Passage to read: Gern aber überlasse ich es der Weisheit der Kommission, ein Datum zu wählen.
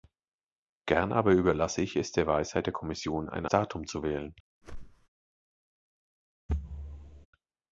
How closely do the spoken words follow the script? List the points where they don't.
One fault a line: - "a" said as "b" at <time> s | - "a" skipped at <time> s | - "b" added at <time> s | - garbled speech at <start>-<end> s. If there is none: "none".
none